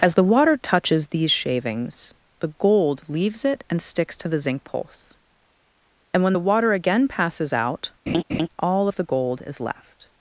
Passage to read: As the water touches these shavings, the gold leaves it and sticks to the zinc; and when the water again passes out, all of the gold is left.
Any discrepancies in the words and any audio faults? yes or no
yes